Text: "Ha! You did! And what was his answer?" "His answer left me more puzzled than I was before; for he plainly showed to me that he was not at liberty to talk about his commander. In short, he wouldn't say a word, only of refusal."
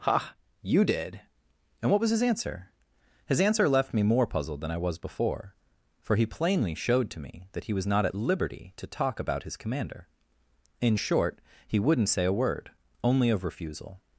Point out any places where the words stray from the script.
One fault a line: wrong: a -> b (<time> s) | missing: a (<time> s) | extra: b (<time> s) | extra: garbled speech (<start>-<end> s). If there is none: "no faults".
no faults